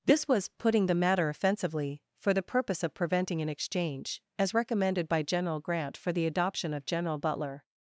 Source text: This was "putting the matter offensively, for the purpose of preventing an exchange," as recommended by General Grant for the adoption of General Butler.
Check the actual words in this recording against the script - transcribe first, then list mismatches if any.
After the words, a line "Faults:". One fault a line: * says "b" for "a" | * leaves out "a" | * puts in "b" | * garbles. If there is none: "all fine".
This was "putting the matter offensively, for the purpose of preventing an exchange," as recommended by General Grant for the adoption of General Butler.
Faults:
all fine